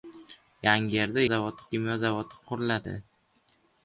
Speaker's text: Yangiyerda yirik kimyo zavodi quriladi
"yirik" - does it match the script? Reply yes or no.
no